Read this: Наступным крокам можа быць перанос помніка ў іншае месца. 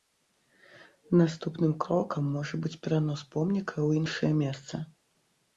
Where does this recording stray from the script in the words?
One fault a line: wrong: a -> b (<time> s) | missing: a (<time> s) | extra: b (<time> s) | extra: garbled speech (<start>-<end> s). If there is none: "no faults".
no faults